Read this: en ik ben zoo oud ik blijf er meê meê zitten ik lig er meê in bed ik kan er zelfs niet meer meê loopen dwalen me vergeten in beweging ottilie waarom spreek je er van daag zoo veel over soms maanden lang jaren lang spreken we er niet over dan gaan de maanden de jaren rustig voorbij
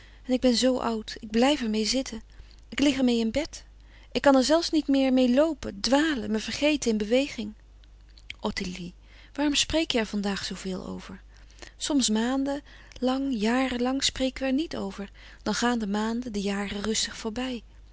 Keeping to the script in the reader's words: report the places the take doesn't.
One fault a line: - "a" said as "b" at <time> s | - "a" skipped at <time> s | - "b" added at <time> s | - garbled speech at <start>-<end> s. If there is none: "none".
- "meê" skipped at 1.8 s